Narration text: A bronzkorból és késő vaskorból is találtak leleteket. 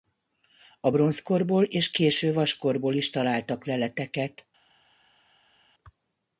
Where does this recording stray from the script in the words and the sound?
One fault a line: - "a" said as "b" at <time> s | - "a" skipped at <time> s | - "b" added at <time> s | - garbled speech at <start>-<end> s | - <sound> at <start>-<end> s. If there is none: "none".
none